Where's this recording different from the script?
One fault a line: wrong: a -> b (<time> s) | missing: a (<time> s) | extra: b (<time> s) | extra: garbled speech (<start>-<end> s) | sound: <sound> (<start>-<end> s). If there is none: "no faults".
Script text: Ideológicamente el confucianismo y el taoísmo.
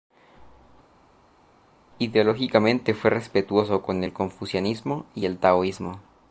extra: fue respetuoso con (2.9 s)